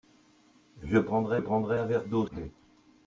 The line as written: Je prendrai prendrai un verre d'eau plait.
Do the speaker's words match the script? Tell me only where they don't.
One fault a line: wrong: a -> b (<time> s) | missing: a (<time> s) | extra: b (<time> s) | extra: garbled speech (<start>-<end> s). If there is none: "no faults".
no faults